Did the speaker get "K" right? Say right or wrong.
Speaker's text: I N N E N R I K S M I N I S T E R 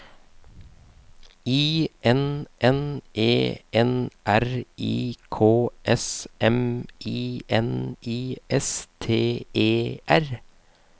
right